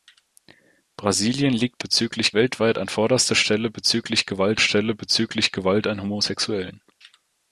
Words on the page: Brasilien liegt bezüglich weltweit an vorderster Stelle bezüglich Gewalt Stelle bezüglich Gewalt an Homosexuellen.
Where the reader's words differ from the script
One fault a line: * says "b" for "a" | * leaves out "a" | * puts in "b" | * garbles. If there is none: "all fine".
all fine